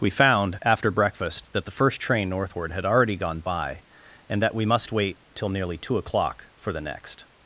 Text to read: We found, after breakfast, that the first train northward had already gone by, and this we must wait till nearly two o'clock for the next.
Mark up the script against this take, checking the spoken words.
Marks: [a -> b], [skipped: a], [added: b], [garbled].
We found, after breakfast, that the first train northward had already gone by, and [this -> that] we must wait till nearly two o'clock for the next.